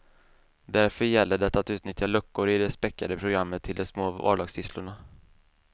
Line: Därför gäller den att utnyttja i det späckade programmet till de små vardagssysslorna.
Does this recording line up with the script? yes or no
no